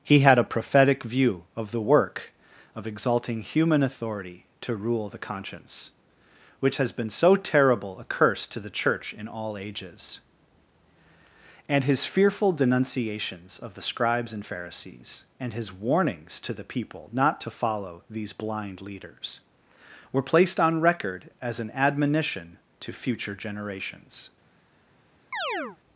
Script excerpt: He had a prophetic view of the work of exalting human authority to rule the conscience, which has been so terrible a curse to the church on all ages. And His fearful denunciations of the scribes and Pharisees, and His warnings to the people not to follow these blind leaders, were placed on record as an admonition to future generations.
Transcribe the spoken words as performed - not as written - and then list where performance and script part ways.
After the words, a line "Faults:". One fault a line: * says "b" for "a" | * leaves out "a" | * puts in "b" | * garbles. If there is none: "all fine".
He had a prophetic view of the work of exalting human authority to rule the conscience, which has been so terrible a curse to the church in all ages. And His fearful denunciations of the scribes and Pharisees, and His warnings to the people not to follow these blind leaders, were placed on record as an admonition to future generations.
Faults:
* says "in" for "on"